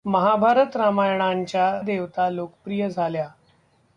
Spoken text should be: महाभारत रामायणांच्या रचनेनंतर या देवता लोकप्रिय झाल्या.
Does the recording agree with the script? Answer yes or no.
no